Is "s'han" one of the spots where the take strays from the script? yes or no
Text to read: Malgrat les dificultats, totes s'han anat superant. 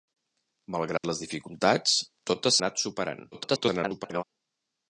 yes